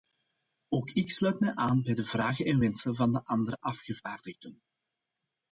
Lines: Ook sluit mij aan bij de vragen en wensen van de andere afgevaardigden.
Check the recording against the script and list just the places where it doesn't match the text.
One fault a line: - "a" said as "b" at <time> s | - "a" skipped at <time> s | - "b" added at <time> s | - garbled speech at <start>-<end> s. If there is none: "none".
- "ik" added at 0.9 s